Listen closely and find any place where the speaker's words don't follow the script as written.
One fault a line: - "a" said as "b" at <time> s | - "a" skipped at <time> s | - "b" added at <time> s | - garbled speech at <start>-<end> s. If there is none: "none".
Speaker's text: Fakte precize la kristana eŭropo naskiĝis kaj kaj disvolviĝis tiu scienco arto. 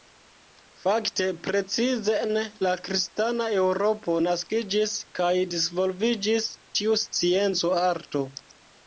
- "en" added at 2.2 s
- "kaj" skipped at 5.3 s